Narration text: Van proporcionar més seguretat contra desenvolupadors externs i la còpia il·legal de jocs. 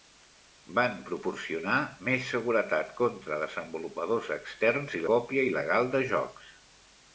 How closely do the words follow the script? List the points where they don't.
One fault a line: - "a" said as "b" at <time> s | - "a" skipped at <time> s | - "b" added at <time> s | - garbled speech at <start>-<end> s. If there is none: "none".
- "la" skipped at 5.1 s